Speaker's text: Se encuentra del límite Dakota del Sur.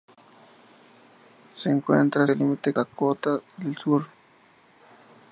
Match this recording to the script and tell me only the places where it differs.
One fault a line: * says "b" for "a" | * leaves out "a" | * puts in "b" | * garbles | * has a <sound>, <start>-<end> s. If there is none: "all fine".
all fine